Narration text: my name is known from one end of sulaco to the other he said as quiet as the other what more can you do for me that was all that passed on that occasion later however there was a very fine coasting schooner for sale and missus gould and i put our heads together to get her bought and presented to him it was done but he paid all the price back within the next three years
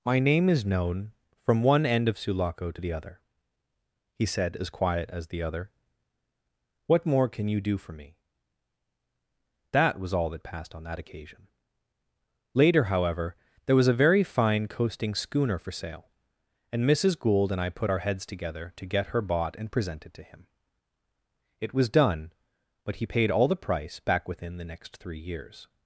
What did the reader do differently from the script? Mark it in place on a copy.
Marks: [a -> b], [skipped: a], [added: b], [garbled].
my name is known from one end of sulaco to the other he said as quiet as the other what more can you do for me that was all that passed on that occasion later however there was a very fine coasting schooner for sale and missus gould and i put our heads together to get her bought and presented to him it was done but he paid all the price back within the next three years